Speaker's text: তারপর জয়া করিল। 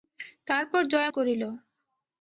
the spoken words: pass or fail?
pass